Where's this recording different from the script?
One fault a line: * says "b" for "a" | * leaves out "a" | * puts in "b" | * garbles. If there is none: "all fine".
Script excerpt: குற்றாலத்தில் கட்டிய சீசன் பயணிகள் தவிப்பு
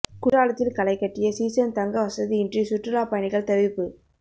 * puts in "களை"
* puts in "தங்க வசதியின்றி சுற்றுலா"